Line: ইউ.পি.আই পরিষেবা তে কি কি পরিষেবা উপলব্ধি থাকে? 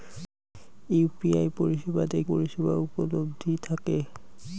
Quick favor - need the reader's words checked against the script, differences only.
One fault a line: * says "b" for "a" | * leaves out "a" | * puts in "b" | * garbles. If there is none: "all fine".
* leaves out "কি কি"